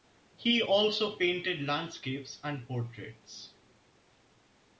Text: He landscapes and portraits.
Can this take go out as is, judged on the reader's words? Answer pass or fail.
fail